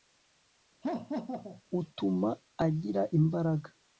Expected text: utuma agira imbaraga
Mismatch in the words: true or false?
false